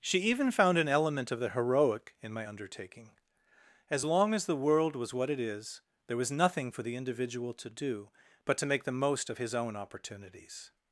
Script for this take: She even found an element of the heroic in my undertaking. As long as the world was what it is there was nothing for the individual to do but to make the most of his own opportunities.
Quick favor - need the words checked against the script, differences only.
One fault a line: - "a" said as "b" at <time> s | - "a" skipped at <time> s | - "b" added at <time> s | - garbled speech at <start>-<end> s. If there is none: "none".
none